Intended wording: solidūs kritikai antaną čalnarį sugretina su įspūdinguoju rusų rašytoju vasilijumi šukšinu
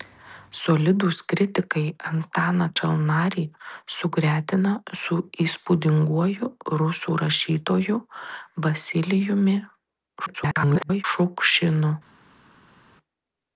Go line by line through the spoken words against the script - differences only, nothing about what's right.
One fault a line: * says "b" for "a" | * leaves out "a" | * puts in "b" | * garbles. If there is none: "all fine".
* garbles